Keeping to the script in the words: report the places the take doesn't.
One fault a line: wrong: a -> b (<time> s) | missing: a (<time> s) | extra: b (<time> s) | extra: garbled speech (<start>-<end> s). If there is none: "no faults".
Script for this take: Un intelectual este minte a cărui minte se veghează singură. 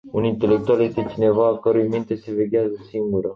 wrong: minte -> cineva (1.1 s)